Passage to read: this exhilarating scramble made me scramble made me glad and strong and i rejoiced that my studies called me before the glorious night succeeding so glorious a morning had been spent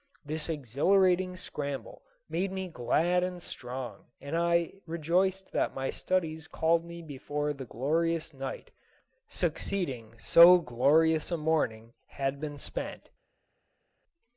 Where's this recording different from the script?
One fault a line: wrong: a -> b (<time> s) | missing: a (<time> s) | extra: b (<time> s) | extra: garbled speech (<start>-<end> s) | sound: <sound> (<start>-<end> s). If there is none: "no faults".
missing: scramble made me (2.7 s)